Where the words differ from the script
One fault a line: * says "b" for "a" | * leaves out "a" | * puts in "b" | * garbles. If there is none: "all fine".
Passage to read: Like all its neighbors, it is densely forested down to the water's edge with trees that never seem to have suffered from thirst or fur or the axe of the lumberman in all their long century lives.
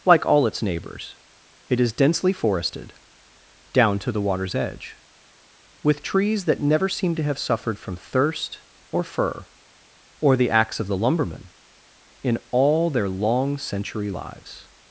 all fine